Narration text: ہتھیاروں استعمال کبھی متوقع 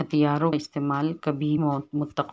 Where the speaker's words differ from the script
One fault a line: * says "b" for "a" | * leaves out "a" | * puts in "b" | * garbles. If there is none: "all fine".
all fine